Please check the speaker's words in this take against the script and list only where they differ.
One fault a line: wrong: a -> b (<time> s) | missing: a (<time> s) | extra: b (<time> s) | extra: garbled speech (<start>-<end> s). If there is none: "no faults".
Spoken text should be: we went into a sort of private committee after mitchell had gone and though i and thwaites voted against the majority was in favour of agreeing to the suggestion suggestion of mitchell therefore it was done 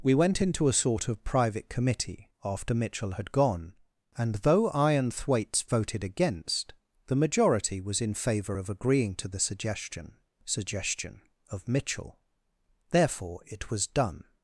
no faults